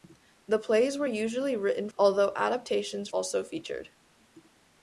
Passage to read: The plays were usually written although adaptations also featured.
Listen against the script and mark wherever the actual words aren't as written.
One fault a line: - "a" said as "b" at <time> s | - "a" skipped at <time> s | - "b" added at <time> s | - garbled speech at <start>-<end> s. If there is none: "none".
none